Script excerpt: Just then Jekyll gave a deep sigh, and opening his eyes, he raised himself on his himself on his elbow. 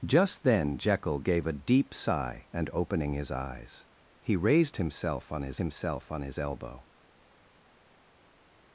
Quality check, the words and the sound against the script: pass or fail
pass